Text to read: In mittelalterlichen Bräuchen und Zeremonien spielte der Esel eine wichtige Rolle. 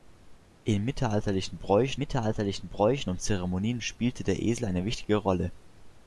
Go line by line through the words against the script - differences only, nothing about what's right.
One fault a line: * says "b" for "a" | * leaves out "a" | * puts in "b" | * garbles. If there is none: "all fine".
* puts in "mittelalterlichen Bräuchen"